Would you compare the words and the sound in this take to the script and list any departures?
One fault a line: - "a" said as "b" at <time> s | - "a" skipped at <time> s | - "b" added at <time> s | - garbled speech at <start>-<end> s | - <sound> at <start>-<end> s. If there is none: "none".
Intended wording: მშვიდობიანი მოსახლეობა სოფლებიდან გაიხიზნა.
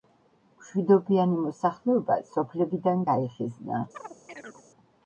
- chirp at 3.9-4.6 s